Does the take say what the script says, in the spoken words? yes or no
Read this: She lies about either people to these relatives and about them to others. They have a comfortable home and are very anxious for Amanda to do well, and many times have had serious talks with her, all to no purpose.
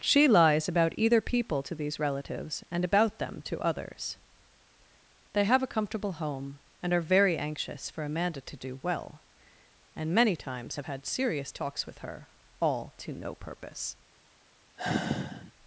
yes